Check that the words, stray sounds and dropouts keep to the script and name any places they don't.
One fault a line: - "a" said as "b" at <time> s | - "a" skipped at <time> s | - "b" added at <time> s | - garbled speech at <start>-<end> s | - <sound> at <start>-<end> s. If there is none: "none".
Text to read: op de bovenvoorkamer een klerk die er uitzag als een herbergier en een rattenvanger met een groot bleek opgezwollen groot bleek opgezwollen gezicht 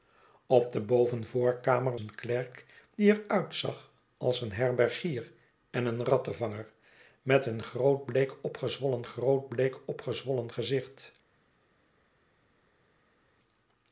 none